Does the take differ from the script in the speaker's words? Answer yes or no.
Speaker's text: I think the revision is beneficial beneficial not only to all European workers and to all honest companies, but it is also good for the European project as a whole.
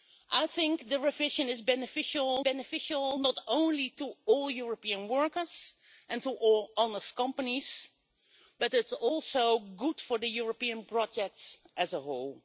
no